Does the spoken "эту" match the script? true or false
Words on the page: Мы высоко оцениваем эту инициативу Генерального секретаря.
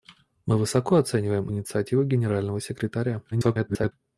false